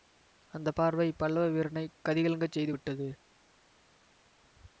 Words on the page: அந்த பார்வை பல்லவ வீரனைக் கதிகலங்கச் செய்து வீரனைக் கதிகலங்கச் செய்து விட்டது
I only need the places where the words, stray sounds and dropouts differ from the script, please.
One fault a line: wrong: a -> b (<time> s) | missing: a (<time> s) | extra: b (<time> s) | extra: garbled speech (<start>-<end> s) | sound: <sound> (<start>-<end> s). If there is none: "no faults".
missing: வீரனைக் கதிகலங்கச் செய்து (2.7 s)